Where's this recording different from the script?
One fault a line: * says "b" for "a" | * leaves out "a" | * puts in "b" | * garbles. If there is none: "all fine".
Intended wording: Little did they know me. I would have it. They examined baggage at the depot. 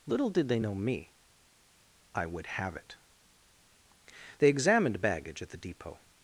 all fine